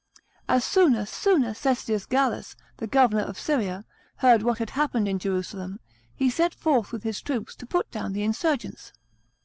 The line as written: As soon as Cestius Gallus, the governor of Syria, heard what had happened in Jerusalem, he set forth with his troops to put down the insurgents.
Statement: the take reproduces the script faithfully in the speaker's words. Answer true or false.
false